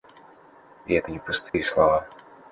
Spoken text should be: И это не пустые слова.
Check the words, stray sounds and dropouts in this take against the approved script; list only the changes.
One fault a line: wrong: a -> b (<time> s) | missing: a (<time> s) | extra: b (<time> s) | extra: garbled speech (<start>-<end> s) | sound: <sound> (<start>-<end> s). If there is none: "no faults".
sound: dropout (1.5-1.5 s)